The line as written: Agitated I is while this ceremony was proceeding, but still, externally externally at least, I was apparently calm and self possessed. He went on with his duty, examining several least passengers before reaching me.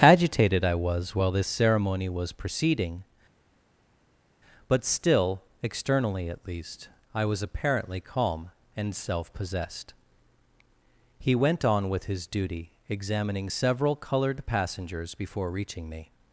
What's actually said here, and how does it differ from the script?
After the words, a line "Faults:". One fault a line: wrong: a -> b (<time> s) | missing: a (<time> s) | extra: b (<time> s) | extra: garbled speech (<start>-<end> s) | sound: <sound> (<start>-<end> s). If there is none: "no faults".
Agitated I was while this ceremony was proceeding, but still, externally at least, I was apparently calm and self possessed. He went on with his duty, examining several colored passengers before reaching me.
Faults:
wrong: is -> was (0.7 s)
missing: externally (6.3 s)
wrong: least -> colored (14.0 s)